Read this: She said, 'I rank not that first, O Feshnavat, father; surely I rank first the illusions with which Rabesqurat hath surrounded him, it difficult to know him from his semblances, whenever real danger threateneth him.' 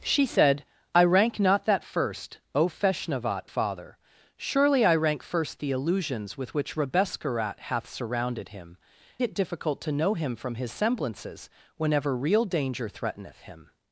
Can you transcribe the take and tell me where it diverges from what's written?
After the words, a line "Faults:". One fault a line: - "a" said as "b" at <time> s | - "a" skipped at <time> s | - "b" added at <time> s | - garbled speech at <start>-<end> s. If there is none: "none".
She said, 'I rank not that first, O Feshnavat, father; surely I rank first the illusions with which Rabesqurat hath surrounded him, it difficult to know him from his semblances, whenever real danger threateneth him.'
Faults:
none